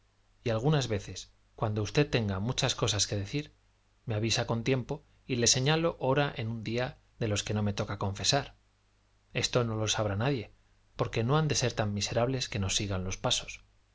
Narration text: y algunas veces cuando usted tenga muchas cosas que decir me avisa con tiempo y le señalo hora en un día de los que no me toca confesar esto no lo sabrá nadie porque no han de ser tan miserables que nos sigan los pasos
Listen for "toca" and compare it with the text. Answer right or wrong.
right